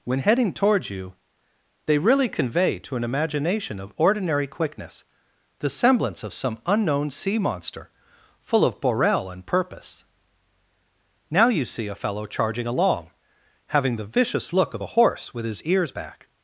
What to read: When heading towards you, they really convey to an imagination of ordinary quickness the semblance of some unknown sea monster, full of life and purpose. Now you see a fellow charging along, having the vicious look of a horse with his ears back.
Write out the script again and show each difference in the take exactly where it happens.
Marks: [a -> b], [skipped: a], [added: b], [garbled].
When heading towards you, they really convey to an imagination of ordinary quickness the semblance of some unknown sea monster, full of [life -> borel] and purpose. Now you see a fellow charging along, having the vicious look of a horse with his ears back.